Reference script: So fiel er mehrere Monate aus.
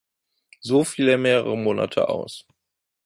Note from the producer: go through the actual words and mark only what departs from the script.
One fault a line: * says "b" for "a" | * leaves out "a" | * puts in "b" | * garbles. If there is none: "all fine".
all fine